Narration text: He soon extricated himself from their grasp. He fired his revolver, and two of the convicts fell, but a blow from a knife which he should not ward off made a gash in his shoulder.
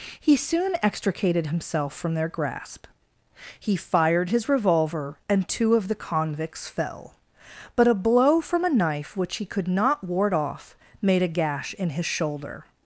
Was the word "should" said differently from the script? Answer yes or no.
yes